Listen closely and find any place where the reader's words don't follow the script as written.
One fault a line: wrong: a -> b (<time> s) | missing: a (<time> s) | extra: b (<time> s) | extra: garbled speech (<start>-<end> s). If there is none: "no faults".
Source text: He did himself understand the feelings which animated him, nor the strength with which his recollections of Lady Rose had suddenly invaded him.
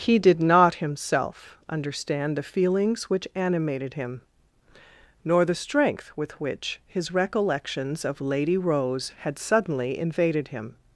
extra: not (0.4 s)